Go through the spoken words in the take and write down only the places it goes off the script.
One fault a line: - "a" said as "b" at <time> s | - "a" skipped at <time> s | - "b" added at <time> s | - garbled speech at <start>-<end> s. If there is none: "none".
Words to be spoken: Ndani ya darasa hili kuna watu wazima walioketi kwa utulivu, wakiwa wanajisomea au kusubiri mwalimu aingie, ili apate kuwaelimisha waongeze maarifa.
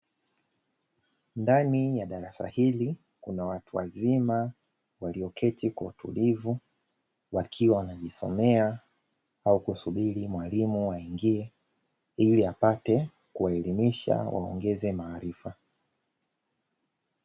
none